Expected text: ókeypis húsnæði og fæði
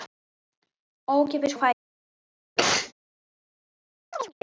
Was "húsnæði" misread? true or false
true